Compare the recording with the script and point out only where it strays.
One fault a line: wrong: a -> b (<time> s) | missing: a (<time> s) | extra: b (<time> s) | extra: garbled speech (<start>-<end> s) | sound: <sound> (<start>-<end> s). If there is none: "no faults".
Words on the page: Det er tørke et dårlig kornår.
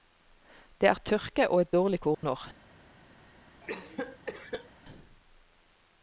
extra: og (1.5 s)
sound: dropout (2.1-2.2 s)
sound: cough (3.6-4.7 s)